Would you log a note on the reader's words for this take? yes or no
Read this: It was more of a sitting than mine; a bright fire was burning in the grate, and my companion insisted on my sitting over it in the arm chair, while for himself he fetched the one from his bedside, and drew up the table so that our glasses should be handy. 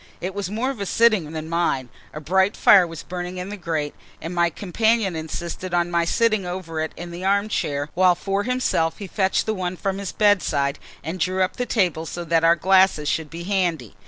no